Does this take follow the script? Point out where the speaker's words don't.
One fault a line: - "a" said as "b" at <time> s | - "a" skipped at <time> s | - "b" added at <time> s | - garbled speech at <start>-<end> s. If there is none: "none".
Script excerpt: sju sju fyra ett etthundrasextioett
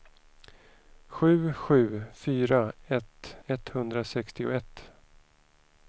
none